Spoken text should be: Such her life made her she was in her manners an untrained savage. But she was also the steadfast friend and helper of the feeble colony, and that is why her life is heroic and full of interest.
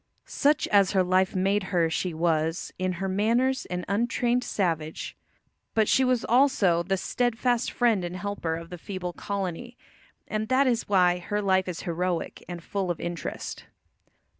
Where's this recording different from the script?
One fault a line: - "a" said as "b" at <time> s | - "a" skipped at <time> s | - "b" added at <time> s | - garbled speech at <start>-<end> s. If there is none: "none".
- "as" added at 0.7 s